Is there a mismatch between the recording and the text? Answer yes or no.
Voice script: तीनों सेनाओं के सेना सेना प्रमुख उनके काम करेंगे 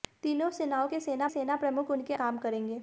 no